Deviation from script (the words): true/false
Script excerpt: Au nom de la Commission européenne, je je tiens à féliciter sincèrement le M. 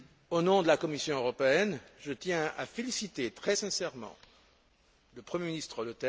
true